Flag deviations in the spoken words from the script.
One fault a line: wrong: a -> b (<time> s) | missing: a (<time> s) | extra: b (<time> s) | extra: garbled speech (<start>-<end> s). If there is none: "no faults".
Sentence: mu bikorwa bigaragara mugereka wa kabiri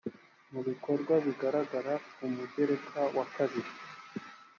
extra: ku (2.1 s)